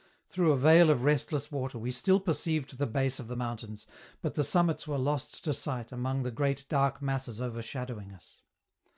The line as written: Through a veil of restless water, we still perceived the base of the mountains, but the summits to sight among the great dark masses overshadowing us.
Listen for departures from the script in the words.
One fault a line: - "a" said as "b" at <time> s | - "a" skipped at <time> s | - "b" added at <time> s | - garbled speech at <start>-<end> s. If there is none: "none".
- "were lost" added at 4.9 s